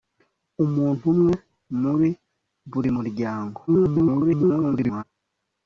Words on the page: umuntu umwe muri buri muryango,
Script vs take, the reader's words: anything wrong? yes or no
yes